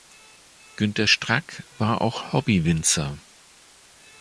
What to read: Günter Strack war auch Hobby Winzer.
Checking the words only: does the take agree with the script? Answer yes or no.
yes